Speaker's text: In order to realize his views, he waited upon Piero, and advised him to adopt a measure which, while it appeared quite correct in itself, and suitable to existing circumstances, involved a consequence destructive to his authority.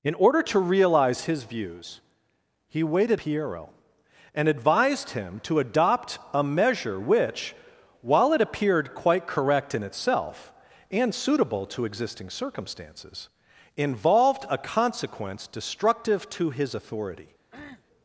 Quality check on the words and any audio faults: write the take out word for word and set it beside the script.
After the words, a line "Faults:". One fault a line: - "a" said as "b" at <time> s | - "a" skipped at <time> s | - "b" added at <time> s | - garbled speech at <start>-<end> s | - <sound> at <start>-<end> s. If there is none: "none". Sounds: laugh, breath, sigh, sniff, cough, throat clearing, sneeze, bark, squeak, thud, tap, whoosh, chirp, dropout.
In order to realize his views, he waited Piero, and advised him to adopt a measure which, while it appeared quite correct in itself, and suitable to existing circumstances, involved a consequence destructive to his authority.
Faults:
- "upon" skipped at 3.2 s
- cough at 17.5-17.8 s